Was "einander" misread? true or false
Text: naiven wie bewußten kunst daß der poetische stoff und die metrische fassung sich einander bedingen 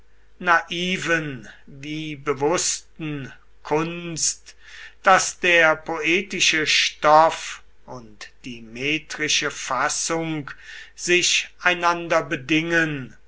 false